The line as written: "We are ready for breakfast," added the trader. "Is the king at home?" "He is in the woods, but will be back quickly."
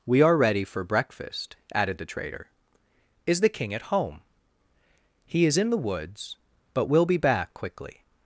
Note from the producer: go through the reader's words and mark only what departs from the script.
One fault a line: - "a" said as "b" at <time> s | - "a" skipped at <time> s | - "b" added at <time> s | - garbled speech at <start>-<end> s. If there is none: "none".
none